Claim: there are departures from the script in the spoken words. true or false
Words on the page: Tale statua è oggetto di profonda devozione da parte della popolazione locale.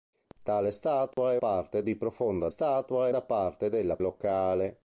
true